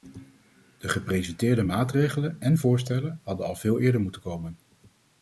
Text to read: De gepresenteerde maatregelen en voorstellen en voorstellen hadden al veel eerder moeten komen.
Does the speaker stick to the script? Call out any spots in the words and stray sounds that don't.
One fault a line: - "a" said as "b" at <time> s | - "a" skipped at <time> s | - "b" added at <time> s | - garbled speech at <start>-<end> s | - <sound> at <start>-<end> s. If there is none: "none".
- "en voorstellen" skipped at 3.2 s